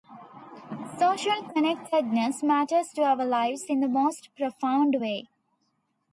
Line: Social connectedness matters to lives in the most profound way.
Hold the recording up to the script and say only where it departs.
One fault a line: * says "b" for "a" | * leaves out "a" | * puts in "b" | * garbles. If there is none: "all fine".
* puts in "our"